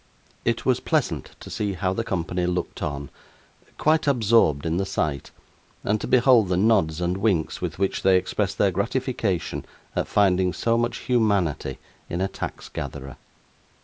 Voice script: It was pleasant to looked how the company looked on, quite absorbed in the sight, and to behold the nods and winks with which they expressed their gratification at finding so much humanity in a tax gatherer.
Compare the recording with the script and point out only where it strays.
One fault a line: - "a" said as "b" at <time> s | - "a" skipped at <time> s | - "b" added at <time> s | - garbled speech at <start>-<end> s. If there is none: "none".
- "looked" said as "see" at 1.5 s